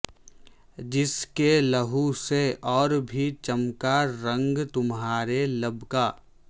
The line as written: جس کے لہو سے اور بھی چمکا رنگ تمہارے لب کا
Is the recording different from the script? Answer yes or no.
no